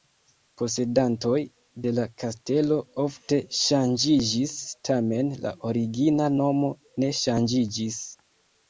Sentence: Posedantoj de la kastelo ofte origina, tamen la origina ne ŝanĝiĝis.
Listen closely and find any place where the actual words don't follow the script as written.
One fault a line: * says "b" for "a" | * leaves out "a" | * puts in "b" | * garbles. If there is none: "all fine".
* says "ŝanĝiĝis" for "origina"
* puts in "nomo"